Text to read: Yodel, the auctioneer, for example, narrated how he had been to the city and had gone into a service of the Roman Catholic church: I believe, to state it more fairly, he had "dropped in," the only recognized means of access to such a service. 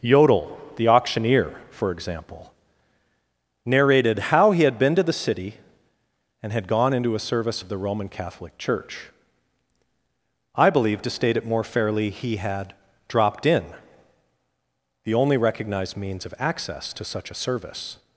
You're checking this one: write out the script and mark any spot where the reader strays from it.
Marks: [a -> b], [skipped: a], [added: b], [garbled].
Yodel, the auctioneer, for example, narrated how he had been to the city and had gone into a service of the Roman Catholic church: I believe, to state it more fairly, he had "dropped in," the only recognized means of access to such a service.